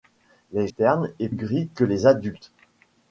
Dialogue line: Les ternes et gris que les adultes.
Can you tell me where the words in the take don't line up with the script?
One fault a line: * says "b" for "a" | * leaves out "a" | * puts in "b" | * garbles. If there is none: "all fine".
all fine